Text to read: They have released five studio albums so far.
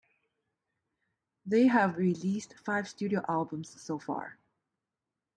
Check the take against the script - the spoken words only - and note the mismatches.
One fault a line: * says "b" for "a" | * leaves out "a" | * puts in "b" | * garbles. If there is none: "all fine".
all fine